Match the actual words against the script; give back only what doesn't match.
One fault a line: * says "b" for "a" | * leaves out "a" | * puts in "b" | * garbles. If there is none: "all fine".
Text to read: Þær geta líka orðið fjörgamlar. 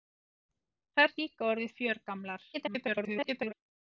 * leaves out "geta"
* garbles